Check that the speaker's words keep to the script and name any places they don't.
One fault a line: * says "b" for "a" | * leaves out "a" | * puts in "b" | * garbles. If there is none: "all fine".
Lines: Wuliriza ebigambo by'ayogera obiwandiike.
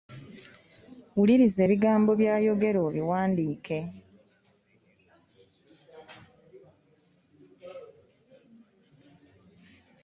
all fine